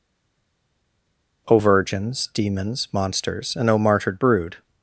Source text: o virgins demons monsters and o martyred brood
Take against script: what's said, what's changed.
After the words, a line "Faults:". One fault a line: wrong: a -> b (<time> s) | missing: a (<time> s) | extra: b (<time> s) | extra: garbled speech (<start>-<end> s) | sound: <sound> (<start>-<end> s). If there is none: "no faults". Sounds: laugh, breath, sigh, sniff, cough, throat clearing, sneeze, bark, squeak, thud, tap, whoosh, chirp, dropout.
o virgins demons monsters and o martyred brood
Faults:
no faults